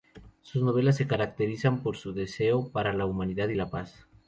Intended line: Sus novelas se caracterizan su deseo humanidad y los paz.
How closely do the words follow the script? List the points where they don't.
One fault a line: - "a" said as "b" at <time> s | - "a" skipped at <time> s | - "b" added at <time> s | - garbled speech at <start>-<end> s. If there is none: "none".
- "por" added at 1.8 s
- "para la" added at 2.7 s
- "los" said as "la" at 3.5 s